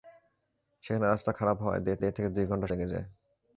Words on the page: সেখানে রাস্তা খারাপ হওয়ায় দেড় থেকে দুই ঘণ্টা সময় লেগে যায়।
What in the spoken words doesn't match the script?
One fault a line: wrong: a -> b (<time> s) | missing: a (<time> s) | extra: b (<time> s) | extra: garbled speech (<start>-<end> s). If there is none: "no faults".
extra: দেড় (2.0 s)
missing: সময় (2.7 s)